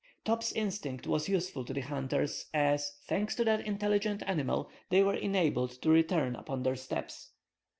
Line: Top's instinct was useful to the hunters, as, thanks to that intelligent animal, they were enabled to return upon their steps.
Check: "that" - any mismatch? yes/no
no